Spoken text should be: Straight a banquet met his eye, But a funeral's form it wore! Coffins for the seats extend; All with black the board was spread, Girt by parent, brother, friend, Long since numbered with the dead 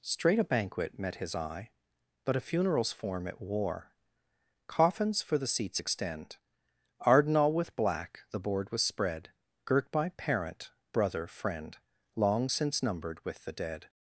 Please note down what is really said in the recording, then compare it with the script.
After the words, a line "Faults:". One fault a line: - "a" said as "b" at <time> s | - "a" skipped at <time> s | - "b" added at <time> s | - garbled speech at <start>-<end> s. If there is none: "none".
Straight a banquet met his eye, But a funeral's form it wore! Coffins for the seats extend; arden All with black the board was spread, Girt by parent, brother, friend, Long since numbered with the dead
Faults:
- "arden" added at 7.0 s